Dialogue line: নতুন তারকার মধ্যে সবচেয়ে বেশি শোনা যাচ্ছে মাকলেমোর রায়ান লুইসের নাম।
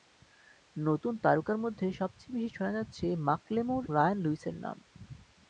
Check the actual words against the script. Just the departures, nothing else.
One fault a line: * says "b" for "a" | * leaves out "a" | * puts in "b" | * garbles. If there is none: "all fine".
all fine